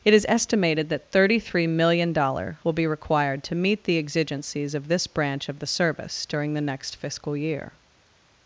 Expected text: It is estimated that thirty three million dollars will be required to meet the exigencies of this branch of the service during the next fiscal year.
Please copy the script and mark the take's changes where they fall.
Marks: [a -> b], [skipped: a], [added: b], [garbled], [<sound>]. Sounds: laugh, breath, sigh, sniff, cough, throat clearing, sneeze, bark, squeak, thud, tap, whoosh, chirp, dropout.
It is estimated that thirty three million [dollars -> dollar] will be required to meet the exigencies of this branch of the service during the next fiscal year.